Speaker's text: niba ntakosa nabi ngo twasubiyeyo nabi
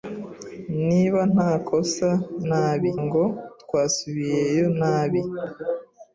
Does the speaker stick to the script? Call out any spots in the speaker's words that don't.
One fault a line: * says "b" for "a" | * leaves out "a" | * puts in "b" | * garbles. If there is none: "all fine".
all fine